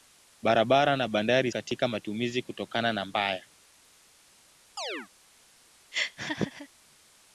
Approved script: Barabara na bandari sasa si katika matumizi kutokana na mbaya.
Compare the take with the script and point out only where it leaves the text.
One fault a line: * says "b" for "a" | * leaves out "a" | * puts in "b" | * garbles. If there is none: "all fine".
* leaves out "sasa si"